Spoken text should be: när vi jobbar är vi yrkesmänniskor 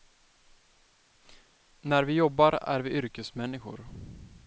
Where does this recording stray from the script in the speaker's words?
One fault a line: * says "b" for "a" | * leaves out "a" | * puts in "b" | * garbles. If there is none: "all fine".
all fine